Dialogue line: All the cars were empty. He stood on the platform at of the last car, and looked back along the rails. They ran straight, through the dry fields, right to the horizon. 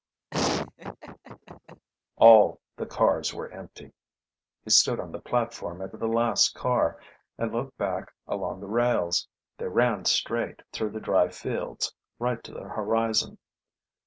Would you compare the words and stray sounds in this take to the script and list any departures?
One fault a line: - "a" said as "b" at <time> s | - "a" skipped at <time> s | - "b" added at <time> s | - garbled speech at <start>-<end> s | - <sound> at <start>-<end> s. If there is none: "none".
- laugh at 0.3-1.9 s